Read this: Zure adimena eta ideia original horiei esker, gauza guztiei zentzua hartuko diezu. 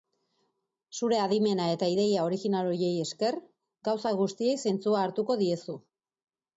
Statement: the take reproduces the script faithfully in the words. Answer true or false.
true